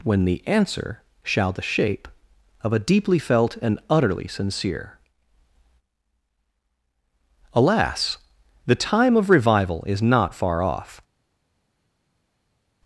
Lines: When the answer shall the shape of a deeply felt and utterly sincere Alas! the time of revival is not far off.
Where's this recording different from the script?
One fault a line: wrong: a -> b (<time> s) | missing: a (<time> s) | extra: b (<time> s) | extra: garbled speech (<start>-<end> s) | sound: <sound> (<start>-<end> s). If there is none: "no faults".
no faults